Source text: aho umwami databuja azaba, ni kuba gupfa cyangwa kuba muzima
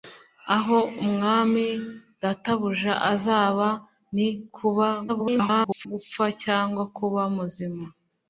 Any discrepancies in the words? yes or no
yes